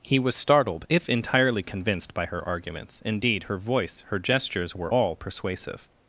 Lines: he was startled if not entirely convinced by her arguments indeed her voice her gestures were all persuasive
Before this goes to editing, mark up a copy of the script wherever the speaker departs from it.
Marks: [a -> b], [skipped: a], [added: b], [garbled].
he was startled if [skipped: not] entirely convinced by her arguments indeed her voice her gestures were all persuasive